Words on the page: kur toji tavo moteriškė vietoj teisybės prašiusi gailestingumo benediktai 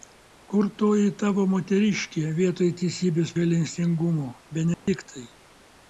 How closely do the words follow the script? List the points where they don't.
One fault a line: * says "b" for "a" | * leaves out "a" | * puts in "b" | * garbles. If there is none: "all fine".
* leaves out "prašiusi"